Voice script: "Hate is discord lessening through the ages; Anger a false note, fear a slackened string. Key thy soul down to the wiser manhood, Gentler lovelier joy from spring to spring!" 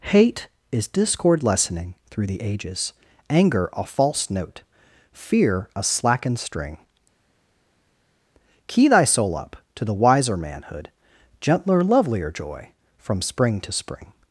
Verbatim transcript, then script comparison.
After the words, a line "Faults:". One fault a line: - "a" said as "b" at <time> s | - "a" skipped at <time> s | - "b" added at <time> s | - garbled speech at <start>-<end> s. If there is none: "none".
"Hate is discord lessening through the ages; Anger a false note, fear a slackened string. Key thy soul up to the wiser manhood, Gentler lovelier joy from spring to spring!"
Faults:
- "down" said as "up" at 9.4 s